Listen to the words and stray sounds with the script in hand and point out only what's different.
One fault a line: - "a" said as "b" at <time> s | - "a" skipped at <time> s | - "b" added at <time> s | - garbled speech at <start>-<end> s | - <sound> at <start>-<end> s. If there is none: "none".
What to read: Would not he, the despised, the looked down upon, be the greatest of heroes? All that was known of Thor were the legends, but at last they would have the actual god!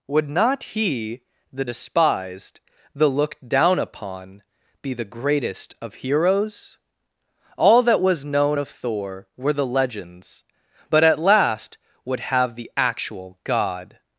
- "they" skipped at 11.8 s